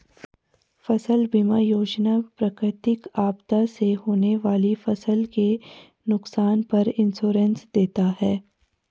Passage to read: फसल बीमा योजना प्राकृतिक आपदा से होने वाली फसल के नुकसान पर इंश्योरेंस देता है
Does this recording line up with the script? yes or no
yes